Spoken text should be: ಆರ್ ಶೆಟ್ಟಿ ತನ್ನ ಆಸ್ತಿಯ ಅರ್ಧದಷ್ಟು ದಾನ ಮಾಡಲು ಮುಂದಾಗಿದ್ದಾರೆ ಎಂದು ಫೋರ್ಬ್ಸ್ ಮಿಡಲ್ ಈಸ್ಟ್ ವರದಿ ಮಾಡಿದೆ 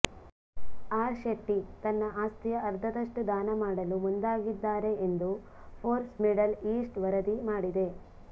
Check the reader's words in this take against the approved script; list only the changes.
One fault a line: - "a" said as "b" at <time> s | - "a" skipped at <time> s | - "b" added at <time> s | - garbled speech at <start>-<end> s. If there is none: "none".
none